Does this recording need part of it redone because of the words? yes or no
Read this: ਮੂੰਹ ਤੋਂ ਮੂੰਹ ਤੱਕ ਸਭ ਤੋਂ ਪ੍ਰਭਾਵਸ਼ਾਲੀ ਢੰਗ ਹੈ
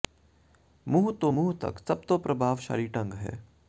no